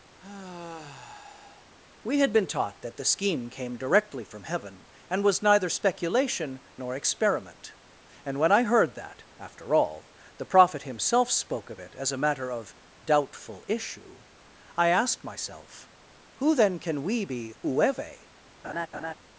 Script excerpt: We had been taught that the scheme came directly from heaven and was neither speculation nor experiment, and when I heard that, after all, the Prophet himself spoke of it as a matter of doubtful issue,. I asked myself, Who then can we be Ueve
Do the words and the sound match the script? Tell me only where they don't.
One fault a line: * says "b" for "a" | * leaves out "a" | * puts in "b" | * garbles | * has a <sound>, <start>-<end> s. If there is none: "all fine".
* has a sigh, 0.2-1.7 s
* has a laugh, 18.6-19.1 s